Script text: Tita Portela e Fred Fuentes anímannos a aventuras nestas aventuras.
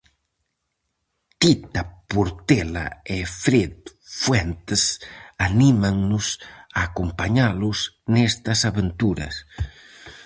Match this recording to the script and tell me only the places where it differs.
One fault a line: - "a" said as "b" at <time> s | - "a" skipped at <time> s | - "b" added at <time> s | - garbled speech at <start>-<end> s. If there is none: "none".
- "aventuras" said as "acompañalos" at 6.9 s